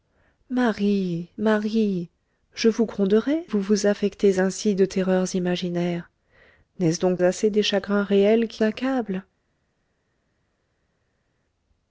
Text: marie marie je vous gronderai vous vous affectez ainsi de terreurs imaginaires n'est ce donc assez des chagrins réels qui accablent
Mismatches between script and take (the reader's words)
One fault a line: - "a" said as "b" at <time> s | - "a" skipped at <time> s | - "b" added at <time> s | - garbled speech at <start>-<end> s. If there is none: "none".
none